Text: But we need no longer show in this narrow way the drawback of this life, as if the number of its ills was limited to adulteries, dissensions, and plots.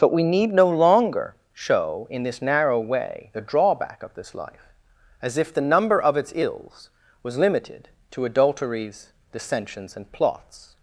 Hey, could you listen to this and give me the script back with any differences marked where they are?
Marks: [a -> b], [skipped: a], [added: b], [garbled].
But we need no longer show in this narrow way the drawback of this life, as if the number of its ills was limited to adulteries, dissensions, and plots.